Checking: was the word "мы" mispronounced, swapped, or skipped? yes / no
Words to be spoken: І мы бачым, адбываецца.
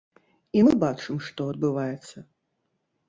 no